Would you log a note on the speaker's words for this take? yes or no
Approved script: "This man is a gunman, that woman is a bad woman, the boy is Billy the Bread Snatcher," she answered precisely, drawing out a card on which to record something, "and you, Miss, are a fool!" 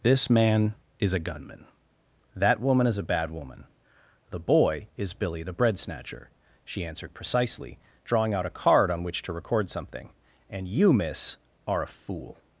no